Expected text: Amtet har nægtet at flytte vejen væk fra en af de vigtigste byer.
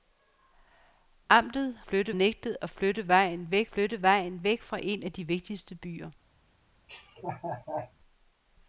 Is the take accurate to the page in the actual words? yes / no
no